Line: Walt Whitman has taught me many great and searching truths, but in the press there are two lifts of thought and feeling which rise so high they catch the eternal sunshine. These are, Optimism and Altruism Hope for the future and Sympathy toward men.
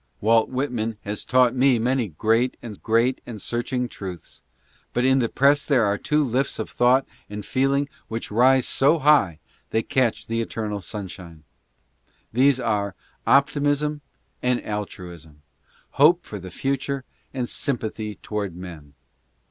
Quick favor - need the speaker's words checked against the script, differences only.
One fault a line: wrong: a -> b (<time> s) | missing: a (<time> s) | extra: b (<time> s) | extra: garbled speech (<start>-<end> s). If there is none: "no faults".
extra: great and (2.7 s)